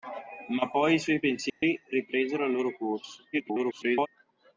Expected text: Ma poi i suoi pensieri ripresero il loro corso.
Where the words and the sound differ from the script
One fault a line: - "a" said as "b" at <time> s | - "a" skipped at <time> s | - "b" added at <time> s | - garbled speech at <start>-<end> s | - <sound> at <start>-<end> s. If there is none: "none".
- dropout at 1.5-1.6 s
- garbled speech at 3.3-4.1 s